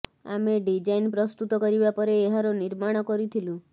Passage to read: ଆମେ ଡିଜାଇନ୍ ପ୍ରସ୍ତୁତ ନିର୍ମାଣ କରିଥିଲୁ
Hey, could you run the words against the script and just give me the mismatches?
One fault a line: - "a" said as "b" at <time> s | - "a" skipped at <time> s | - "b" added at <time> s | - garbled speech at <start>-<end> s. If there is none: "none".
- "କରିବା ପରେ ଏହାର" added at 1.6 s